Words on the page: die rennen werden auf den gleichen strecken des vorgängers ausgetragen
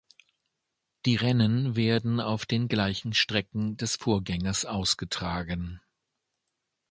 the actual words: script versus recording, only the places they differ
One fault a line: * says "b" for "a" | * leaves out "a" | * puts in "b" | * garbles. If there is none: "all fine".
all fine